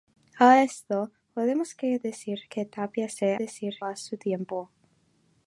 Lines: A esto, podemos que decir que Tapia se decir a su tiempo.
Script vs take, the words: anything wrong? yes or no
no